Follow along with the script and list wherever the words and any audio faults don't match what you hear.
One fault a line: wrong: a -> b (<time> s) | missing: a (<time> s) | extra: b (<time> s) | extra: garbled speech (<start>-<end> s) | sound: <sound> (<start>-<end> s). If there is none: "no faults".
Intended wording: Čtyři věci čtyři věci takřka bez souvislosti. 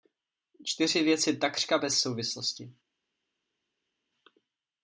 missing: čtyři věci (1.4 s)